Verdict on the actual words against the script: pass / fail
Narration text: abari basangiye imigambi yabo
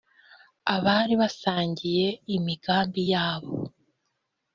pass